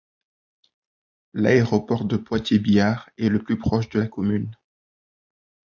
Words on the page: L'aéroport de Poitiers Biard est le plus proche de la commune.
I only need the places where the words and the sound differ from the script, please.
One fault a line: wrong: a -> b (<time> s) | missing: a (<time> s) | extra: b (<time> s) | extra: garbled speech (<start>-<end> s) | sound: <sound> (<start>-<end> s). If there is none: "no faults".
no faults